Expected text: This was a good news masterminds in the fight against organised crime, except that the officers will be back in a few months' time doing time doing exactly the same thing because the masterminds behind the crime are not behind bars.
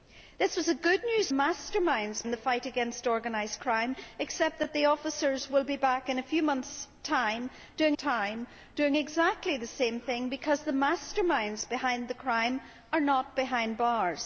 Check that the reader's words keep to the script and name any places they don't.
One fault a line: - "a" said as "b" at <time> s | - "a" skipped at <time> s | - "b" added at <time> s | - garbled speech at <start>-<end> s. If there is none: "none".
none